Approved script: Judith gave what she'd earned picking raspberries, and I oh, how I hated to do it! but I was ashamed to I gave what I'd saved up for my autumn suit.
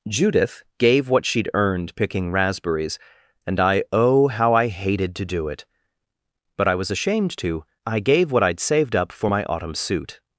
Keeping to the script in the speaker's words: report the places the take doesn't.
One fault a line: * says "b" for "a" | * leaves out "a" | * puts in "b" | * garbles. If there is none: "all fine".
all fine